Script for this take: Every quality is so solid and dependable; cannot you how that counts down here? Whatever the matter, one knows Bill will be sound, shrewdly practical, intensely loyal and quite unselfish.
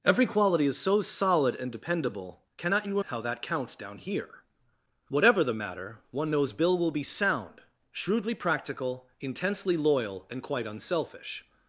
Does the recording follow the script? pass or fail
pass